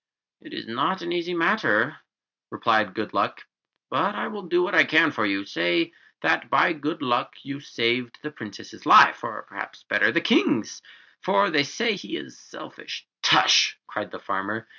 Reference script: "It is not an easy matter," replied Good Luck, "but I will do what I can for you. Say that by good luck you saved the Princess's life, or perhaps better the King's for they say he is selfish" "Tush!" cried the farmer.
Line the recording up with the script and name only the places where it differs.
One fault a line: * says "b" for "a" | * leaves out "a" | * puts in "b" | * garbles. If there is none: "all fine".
all fine